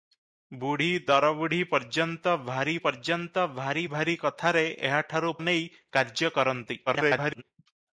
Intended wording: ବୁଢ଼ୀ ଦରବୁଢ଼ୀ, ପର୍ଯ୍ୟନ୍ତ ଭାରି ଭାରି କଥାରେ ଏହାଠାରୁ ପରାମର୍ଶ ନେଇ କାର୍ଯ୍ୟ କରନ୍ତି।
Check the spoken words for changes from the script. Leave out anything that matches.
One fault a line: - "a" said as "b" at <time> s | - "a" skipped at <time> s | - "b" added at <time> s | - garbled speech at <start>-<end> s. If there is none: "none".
- "ପର୍ଯ୍ୟନ୍ତ" added at 2.8 s
- "ଭାରି" added at 3.9 s
- "ପରାମର୍ଶ" skipped at 5.3 s
- garbled speech at 6.9-7.4 s